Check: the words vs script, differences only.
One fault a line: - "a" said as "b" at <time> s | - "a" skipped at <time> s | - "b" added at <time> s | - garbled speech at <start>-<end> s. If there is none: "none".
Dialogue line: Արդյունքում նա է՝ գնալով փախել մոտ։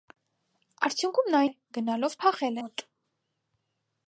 none